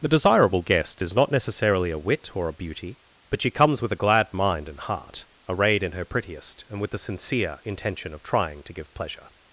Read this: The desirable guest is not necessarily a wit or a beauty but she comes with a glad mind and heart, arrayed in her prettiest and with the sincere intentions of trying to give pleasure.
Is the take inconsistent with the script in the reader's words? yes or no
yes